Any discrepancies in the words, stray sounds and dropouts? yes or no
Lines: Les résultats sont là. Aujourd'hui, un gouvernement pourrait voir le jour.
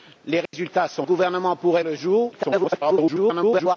yes